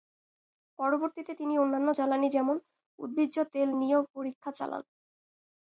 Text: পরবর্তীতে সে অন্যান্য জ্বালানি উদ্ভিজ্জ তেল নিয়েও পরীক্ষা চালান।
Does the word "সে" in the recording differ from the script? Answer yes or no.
yes